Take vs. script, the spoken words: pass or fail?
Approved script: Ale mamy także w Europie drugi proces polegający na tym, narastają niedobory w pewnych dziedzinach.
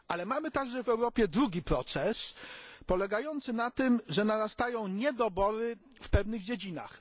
fail